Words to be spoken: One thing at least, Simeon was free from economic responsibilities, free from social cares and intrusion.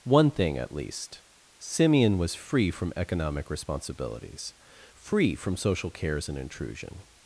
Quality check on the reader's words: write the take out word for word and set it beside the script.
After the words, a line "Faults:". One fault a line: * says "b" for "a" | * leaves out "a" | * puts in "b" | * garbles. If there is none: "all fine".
One thing at least, Simeon was free from economic responsibilities, free from social cares and intrusion.
Faults:
all fine